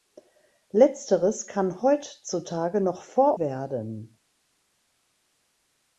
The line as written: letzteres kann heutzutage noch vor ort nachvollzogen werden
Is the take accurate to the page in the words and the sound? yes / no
no